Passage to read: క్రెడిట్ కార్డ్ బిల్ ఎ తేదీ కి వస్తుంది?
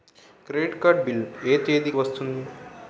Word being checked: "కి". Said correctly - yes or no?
no